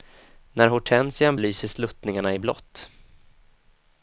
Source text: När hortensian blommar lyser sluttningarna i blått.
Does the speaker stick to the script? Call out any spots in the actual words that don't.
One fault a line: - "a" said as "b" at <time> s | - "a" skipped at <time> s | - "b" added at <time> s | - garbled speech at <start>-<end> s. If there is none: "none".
- "blommar" skipped at 1.4 s